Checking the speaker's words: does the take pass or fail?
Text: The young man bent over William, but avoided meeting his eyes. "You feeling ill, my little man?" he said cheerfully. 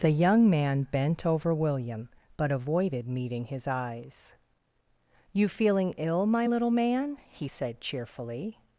pass